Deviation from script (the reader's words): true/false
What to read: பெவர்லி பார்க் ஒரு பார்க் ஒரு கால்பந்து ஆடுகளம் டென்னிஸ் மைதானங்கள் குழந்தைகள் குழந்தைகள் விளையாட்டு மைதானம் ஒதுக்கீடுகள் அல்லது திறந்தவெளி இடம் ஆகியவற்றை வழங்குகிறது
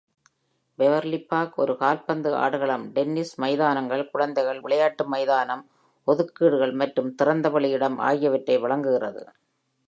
true